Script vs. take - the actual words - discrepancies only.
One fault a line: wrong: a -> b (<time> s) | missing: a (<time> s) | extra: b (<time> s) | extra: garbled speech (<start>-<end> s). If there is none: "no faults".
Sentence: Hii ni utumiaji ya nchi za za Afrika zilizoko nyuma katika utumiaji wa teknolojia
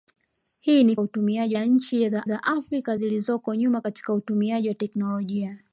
no faults